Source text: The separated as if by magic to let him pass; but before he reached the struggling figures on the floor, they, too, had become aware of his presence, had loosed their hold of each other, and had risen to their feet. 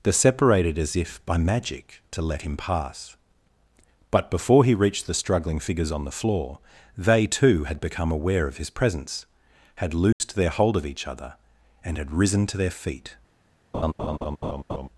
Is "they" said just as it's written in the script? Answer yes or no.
yes